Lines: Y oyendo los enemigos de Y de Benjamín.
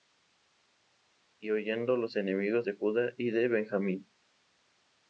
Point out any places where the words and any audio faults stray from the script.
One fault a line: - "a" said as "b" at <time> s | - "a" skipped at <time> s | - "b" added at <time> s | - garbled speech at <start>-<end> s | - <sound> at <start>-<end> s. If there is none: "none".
- "Judá" added at 2.7 s